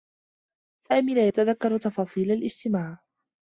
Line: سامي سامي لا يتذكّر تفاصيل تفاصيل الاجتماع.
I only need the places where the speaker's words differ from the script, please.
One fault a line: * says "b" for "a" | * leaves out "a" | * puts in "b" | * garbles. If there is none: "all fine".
* leaves out "سامي"
* leaves out "تفاصيل"